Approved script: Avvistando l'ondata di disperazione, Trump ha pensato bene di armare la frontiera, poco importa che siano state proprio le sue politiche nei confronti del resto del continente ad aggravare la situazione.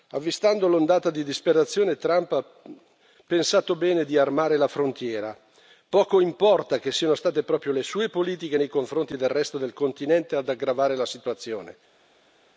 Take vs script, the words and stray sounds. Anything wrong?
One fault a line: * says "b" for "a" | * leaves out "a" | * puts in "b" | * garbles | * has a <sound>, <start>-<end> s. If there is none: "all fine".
all fine